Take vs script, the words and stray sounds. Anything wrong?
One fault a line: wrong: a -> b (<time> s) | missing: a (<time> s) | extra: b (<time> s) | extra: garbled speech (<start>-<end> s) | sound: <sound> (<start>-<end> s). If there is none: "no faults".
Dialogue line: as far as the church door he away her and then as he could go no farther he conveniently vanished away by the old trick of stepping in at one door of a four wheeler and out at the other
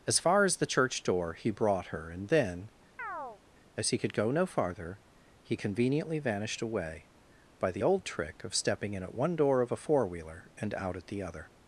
wrong: away -> brought (1.5 s)
sound: chirp (3.0-3.4 s)